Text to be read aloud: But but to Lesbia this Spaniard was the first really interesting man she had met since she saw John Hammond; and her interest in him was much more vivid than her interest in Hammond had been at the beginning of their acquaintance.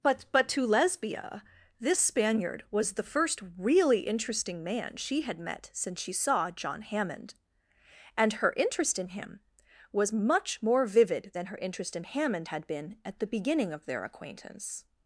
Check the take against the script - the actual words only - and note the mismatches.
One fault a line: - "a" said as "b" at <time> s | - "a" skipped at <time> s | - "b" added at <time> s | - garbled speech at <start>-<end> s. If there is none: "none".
none